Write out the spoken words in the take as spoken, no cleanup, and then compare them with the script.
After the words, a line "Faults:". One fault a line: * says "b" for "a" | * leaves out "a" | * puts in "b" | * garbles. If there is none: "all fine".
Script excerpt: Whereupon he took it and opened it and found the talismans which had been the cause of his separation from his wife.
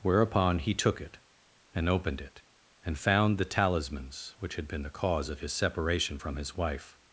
Whereupon he took it and opened it and found the talismans which had been the cause of his separation from his wife.
Faults:
all fine